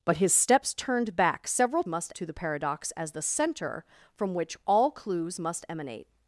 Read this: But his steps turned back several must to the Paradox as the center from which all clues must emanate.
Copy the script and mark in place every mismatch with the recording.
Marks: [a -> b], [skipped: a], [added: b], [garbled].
But his steps turned back several must to the Paradox as the center from which all clues must emanate.